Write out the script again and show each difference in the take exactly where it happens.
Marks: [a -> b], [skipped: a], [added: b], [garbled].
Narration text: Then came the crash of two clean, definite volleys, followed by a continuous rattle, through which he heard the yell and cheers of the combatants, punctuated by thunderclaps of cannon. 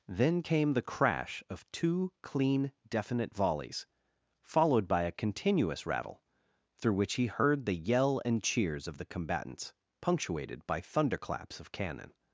Then came the crash of two clean, definite volleys, followed by a continuous rattle, through which he heard the yell and cheers of the combatants, punctuated by thunderclaps of cannon.